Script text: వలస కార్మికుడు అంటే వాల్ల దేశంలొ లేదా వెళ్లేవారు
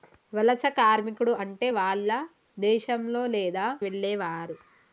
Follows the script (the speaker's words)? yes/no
yes